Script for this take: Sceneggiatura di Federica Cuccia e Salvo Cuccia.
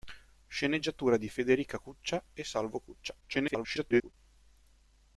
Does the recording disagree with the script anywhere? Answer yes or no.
yes